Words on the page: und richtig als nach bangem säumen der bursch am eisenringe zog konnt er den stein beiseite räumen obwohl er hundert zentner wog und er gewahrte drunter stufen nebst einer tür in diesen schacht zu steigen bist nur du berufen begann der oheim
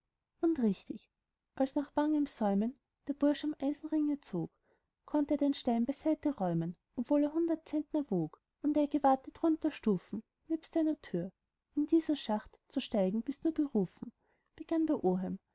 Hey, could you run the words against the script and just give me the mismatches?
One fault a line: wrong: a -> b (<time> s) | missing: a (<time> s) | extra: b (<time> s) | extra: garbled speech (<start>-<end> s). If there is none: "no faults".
missing: du (13.5 s)